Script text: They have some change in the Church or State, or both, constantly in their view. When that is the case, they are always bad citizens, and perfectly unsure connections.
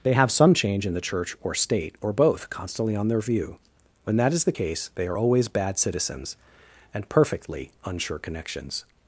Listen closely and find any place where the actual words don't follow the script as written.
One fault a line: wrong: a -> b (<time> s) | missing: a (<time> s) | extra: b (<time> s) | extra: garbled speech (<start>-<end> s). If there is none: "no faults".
wrong: in -> on (2.9 s)